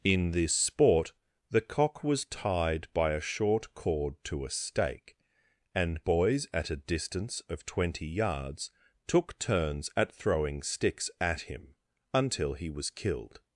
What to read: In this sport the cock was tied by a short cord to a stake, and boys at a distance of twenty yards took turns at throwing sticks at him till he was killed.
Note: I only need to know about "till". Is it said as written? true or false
false